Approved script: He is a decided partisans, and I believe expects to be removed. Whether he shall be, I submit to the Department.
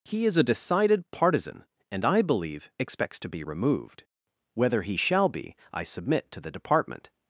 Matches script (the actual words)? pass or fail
fail